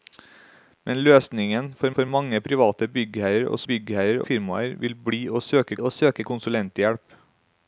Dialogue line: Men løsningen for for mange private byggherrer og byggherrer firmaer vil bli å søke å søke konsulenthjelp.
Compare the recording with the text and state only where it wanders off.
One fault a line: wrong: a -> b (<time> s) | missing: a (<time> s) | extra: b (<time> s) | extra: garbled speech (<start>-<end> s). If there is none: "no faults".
no faults